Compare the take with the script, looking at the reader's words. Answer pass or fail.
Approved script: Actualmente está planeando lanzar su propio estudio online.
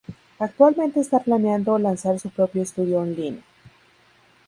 pass